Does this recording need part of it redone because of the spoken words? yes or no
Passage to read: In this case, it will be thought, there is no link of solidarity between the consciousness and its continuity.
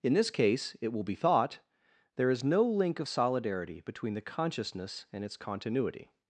no